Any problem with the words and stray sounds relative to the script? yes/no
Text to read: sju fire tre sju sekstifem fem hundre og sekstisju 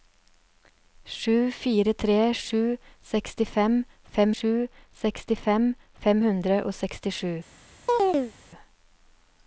yes